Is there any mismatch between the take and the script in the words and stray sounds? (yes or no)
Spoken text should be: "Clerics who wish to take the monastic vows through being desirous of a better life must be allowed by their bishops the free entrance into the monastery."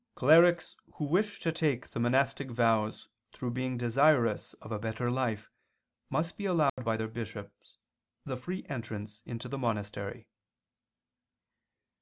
yes